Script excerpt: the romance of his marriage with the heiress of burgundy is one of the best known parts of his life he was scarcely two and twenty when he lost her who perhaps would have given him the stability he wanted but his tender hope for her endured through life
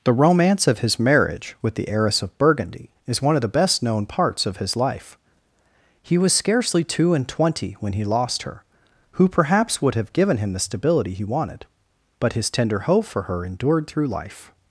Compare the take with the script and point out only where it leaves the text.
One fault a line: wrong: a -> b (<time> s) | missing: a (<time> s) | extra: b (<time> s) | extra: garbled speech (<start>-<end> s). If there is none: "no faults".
no faults